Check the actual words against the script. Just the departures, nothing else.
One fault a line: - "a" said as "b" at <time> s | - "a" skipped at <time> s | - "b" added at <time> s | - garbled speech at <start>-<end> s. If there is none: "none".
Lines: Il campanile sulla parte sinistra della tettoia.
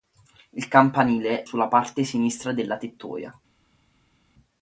none